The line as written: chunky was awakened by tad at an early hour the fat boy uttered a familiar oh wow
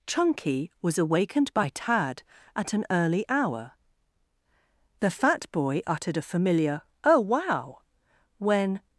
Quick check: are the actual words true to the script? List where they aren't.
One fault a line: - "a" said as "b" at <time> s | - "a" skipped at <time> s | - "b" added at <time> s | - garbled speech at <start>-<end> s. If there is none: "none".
- "when" added at 8.4 s